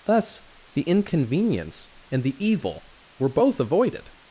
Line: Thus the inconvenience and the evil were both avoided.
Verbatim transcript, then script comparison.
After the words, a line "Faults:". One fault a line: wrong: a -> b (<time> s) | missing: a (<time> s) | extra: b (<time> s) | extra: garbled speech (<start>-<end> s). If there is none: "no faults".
Thus the inconvenience and the evil were both avoided.
Faults:
no faults